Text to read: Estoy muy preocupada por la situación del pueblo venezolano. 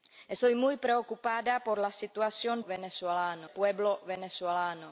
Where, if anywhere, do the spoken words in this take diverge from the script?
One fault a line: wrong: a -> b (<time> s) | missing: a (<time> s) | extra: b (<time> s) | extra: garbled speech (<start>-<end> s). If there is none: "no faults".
wrong: del -> venezolano (2.7 s)